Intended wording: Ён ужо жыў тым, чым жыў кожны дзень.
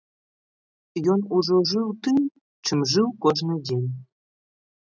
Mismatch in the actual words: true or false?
false